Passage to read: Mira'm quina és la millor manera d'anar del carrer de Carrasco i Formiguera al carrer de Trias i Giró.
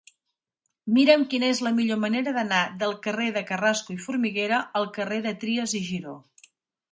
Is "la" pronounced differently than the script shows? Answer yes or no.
no